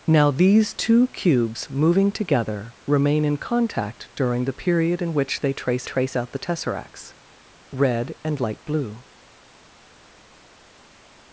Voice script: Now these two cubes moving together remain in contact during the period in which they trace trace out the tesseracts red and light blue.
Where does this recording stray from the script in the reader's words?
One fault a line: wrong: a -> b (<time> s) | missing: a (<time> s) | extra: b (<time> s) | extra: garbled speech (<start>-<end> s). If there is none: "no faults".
no faults